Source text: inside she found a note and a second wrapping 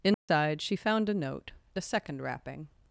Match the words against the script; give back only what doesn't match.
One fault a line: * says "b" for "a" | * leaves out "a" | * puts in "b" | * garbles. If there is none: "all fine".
* leaves out "and"